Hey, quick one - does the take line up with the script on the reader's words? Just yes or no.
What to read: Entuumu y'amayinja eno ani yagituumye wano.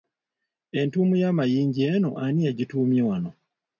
yes